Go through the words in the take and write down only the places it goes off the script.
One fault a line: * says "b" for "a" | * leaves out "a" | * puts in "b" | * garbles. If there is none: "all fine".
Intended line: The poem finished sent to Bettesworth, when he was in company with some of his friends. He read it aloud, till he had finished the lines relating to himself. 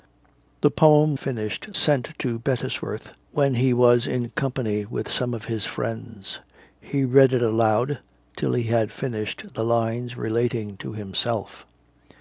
all fine